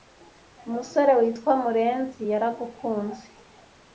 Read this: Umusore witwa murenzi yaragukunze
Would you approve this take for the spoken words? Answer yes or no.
yes